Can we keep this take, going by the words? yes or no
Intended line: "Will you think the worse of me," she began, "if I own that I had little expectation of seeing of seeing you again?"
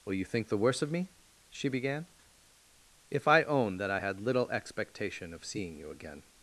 no